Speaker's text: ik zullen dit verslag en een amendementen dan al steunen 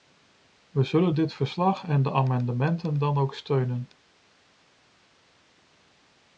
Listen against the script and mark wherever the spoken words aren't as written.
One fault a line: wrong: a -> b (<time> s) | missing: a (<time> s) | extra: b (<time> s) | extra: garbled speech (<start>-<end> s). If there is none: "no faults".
wrong: ik -> we (0.7 s)
wrong: een -> de (2.0 s)
wrong: al -> ook (3.2 s)